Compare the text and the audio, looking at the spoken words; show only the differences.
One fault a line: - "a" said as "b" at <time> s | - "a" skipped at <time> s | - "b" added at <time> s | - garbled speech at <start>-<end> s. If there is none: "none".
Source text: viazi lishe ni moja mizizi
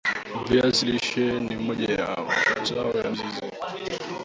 - "ya mazao ya" added at 1.9 s